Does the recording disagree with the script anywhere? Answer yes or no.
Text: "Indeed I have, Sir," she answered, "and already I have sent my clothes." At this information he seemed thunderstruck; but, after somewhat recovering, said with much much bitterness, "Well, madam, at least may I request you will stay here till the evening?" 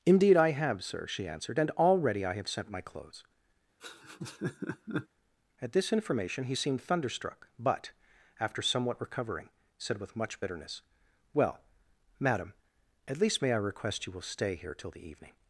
yes